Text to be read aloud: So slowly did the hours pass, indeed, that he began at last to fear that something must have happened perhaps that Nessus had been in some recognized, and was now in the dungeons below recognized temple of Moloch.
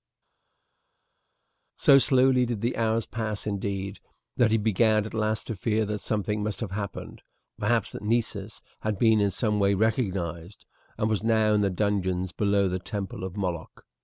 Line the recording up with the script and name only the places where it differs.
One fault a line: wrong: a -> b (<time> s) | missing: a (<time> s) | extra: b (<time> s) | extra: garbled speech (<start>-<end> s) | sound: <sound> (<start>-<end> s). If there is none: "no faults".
extra: way (9.6 s)
wrong: recognized -> the (12.7 s)